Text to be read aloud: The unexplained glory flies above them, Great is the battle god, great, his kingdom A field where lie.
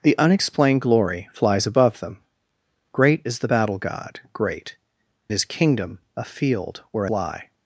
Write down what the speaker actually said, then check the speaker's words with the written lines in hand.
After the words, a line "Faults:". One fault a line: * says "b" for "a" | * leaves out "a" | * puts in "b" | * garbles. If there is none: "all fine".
The unexplained glory flies above them, Great is the battle god, great, his kingdom A field where lie.
Faults:
all fine